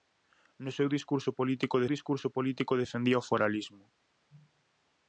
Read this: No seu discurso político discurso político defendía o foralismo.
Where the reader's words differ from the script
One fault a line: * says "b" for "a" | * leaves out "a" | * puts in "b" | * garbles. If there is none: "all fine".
all fine